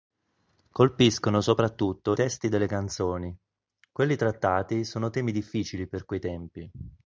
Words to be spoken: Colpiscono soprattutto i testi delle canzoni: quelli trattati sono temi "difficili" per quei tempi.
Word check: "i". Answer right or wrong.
wrong